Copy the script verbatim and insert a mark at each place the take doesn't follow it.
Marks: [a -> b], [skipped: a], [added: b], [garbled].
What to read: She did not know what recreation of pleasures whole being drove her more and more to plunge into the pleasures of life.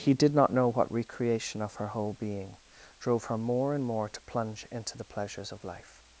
[She -> He] did not know what recreation of [pleasures -> her] whole being drove her more and more to plunge into the pleasures of life.